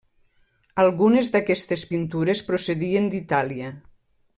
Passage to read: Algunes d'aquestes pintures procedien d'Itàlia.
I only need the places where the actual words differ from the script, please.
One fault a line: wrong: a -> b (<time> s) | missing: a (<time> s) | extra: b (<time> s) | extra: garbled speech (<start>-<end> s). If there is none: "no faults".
no faults